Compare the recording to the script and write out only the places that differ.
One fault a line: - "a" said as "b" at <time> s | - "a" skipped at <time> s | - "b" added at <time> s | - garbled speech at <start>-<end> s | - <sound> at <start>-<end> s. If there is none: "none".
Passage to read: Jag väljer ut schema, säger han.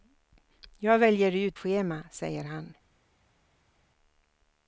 none